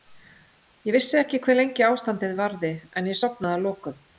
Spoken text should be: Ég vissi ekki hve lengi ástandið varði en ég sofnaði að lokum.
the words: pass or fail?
pass